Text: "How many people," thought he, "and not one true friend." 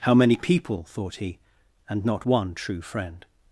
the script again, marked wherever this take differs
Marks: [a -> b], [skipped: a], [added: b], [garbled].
"How many people," thought he, "and not one true friend."